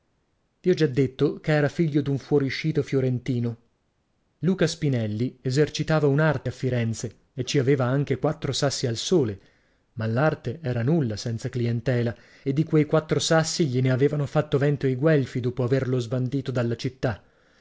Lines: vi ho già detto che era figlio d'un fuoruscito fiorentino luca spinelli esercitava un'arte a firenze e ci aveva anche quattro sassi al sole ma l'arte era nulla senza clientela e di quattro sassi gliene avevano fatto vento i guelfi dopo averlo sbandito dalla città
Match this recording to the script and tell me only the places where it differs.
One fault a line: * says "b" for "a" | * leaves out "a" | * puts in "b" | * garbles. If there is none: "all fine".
* puts in "quei"